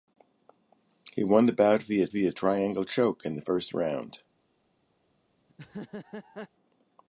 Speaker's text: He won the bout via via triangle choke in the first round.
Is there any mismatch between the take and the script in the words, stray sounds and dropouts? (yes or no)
yes